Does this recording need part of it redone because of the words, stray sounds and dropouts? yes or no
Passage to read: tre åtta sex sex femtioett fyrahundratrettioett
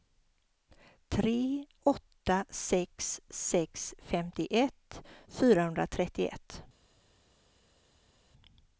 no